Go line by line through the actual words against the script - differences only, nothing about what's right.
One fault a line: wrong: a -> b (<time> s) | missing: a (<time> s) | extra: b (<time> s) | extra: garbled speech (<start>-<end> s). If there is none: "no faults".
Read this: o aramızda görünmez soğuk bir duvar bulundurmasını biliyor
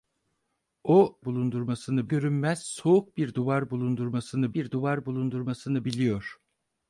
wrong: aramızda -> bulundurmasını (1.2 s)
extra: bir duvar bulundurmasını (4.5 s)